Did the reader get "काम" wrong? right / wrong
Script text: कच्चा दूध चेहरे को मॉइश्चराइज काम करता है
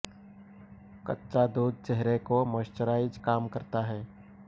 right